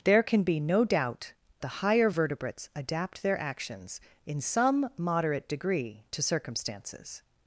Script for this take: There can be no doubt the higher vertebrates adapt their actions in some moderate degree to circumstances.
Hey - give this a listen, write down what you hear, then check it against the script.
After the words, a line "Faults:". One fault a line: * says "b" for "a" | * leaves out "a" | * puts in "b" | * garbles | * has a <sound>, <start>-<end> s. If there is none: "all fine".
There can be no doubt the higher vertebrates adapt their actions in some moderate degree to circumstances.
Faults:
all fine